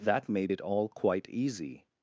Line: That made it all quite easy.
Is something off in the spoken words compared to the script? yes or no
no